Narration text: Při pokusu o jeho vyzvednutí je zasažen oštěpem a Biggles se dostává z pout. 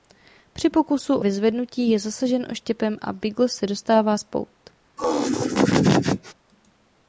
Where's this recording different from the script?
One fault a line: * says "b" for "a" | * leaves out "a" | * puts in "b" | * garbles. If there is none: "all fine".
* leaves out "jeho"